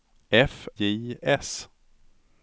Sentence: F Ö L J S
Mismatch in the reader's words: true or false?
true